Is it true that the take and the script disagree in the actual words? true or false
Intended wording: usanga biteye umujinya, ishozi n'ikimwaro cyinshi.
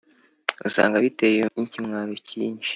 true